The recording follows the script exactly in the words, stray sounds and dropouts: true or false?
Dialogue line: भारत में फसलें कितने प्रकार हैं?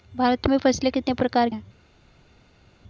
true